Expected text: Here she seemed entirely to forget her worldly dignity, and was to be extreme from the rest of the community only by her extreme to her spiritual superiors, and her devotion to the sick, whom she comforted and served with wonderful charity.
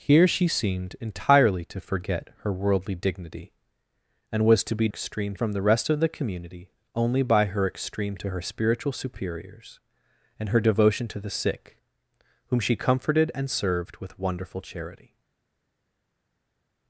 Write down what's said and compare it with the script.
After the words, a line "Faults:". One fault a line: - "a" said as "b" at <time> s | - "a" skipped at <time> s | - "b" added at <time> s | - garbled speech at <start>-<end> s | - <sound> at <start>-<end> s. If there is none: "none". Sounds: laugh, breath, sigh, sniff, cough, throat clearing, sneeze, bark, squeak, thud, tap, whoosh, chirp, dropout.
Here she seemed entirely to forget her worldly dignity, and was to be extreme from the rest of the community only by her extreme to her spiritual superiors, and her devotion to the sick, whom she comforted and served with wonderful charity.
Faults:
none